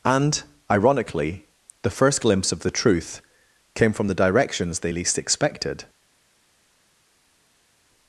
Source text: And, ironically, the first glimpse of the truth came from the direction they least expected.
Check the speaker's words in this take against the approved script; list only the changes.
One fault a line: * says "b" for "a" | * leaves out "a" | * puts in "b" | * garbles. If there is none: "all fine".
* says "directions" for "direction"